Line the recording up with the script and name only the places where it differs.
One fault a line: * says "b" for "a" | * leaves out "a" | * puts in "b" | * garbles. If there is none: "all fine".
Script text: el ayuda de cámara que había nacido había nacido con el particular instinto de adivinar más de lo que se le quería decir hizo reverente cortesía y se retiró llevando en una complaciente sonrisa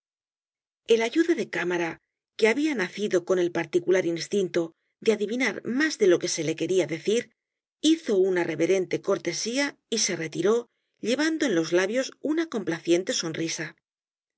* leaves out "había nacido"
* puts in "una"
* puts in "los labios"